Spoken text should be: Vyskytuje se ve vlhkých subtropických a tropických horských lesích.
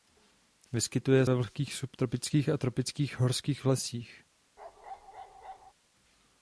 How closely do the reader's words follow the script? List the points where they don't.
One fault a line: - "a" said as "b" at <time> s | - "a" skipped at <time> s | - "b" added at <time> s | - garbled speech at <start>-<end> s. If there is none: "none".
- "se" skipped at 1.3 s